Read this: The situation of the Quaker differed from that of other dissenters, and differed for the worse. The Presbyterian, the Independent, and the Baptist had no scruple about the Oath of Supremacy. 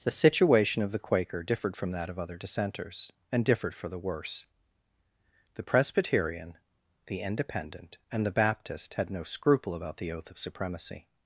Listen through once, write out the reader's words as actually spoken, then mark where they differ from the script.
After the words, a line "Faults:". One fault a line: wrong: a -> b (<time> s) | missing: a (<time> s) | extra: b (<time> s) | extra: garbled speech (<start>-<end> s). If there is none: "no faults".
The situation of the Quaker differed from that of other dissenters, and differed for the worse. The Presbyterian, the Independent, and the Baptist had no scruple about the Oath of Supremacy.
Faults:
no faults